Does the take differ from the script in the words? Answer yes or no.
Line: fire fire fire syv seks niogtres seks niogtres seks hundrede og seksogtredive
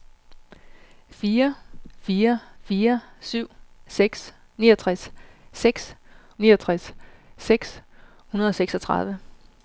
no